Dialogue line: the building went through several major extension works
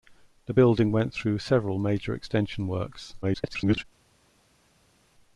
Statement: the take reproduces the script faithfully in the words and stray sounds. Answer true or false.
false